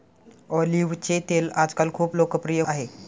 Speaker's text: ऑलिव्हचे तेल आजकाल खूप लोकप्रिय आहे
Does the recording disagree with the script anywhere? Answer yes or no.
no